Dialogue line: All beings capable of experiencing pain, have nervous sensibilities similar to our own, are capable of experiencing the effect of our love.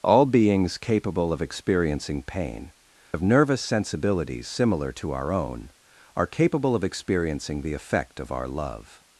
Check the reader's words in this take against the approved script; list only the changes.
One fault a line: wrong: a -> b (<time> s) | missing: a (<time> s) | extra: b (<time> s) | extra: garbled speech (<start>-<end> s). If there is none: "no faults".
no faults